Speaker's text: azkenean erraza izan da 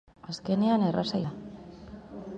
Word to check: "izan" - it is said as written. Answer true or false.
false